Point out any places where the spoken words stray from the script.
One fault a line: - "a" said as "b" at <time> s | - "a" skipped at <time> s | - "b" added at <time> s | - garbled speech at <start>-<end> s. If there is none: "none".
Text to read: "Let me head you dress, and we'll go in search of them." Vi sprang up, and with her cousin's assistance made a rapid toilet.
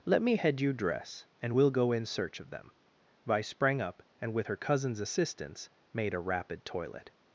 none